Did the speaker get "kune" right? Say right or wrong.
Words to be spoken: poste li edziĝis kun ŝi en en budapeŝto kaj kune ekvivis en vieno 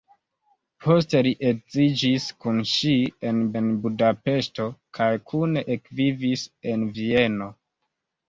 right